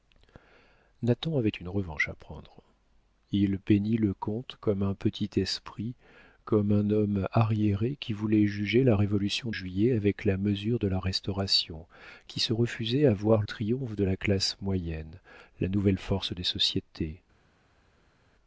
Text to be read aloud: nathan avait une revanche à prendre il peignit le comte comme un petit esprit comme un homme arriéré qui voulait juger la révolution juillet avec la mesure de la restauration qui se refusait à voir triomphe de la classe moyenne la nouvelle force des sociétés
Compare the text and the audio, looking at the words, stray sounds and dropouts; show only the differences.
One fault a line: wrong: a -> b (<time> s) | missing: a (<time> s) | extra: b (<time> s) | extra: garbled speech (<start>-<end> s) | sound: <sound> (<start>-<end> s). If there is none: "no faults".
no faults